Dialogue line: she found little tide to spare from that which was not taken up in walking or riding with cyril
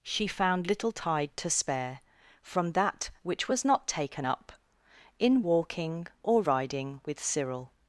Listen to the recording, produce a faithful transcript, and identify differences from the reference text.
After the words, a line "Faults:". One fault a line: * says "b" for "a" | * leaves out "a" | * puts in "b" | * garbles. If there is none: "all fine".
she found little tide to spare from that which was not taken up in walking or riding with cyril
Faults:
all fine